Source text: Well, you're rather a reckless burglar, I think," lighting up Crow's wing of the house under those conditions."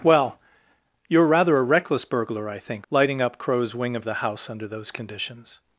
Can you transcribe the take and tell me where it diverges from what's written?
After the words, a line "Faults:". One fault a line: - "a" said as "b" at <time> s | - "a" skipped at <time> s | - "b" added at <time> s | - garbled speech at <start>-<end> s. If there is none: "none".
Well, you're rather a reckless burglar, I think," lighting up Crow's wing of the house under those conditions."
Faults:
none